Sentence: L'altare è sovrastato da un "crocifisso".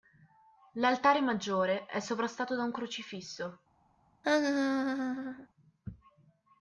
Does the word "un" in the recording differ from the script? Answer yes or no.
no